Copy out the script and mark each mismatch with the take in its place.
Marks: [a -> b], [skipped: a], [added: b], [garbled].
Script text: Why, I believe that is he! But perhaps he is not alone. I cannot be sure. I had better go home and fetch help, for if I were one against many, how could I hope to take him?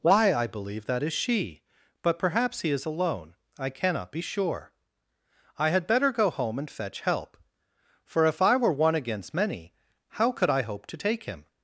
Why, I believe that is [he! -> she] But perhaps he is [skipped: not] alone. I cannot be sure. I had better go home and fetch help, for if I were one against many, how could I hope to take him?